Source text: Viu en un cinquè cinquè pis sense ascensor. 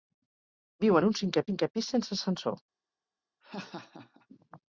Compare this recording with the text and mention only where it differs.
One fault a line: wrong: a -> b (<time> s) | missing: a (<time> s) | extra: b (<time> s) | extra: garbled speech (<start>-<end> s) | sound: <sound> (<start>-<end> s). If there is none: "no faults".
sound: laugh (3.4-4.3 s)